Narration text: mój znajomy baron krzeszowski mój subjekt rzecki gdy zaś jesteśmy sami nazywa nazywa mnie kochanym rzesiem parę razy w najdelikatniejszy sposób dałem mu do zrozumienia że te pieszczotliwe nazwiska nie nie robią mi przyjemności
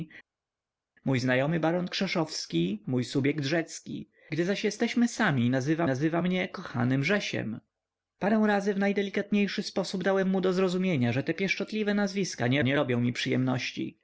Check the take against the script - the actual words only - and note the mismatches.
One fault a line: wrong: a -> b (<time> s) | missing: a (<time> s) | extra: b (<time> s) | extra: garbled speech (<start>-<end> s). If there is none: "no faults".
no faults